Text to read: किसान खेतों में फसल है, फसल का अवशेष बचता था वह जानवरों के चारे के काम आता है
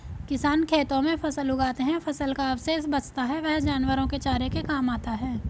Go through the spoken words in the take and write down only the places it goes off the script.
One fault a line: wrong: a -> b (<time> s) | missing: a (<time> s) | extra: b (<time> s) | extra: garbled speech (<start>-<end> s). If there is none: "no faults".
extra: उगाते (1.5 s)
wrong: था -> है (3.2 s)